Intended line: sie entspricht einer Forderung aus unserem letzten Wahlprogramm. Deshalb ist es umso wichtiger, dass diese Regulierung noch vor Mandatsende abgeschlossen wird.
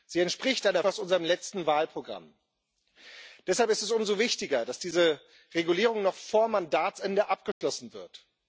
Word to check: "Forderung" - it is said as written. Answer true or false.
false